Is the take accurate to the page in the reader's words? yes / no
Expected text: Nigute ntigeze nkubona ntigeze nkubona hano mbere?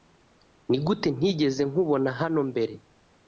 no